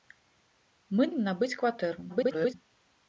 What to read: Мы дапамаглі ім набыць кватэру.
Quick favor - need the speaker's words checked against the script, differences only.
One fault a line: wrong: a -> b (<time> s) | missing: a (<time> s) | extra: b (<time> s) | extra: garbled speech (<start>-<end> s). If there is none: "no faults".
missing: дапамаглі (1.0 s)
extra: garbled speech (2.1-2.5 s)